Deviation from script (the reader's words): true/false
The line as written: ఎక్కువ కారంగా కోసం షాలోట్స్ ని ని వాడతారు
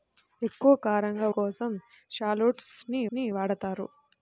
false